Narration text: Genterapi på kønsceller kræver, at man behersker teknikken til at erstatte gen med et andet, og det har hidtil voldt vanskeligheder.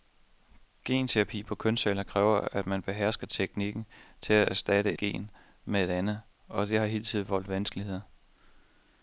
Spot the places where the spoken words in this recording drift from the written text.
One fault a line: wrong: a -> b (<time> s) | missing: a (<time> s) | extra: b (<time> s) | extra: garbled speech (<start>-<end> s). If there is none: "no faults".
no faults